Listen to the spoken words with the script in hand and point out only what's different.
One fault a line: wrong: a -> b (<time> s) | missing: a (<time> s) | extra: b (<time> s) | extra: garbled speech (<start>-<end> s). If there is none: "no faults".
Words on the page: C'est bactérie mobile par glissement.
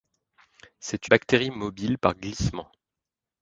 no faults